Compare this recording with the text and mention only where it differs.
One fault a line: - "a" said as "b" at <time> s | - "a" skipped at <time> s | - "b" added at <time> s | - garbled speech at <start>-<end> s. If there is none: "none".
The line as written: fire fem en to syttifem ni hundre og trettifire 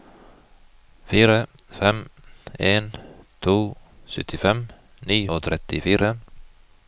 - "hundre" skipped at 5.2 s